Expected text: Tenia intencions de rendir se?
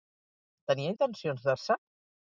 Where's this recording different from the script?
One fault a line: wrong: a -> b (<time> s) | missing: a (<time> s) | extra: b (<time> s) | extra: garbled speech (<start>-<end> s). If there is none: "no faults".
missing: rendir (1.6 s)